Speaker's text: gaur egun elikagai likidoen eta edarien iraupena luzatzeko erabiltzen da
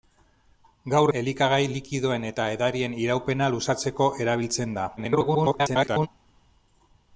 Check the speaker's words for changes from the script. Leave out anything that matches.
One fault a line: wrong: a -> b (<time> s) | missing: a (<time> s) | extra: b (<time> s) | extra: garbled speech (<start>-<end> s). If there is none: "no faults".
missing: egun (1.1 s)
extra: garbled speech (5.0-6.1 s)